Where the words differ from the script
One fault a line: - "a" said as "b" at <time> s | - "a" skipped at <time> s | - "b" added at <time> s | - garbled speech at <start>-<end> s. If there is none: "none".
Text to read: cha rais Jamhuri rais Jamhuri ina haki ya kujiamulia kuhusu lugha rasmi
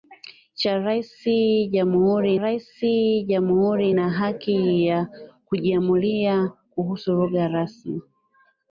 none